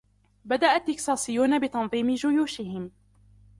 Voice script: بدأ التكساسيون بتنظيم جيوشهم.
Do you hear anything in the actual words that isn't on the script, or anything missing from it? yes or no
no